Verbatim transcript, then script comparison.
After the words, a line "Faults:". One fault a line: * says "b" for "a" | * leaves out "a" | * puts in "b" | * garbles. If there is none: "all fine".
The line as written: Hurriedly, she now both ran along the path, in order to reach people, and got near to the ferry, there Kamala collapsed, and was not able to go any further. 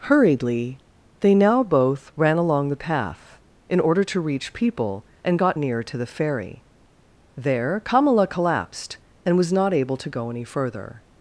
Hurriedly, they now both ran along the path, in order to reach people, and got near to the ferry, there Kamala collapsed, and was not able to go any further.
Faults:
* says "they" for "she"